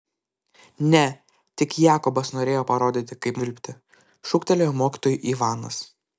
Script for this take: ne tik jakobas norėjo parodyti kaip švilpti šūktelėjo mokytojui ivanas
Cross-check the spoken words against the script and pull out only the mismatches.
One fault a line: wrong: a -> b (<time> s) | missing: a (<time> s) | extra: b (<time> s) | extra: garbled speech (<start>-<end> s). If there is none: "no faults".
no faults